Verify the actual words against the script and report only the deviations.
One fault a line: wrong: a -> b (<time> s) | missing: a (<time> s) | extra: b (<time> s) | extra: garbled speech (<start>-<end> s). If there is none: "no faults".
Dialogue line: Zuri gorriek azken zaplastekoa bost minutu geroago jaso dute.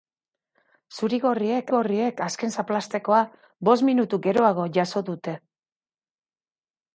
extra: gorriek (1.7 s)